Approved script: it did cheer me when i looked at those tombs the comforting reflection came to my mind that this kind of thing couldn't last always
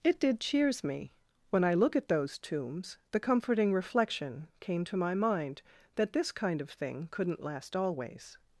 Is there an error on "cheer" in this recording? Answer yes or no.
yes